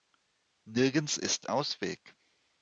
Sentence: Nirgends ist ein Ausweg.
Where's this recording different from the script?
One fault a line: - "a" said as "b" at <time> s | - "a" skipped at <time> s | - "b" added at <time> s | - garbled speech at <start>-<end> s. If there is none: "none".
- "ein" skipped at 1.5 s